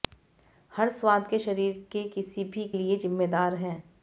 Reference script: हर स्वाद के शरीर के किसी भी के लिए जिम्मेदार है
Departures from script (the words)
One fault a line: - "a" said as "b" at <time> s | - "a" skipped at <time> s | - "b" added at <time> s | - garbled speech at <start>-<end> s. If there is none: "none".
- "के" skipped at 2.7 s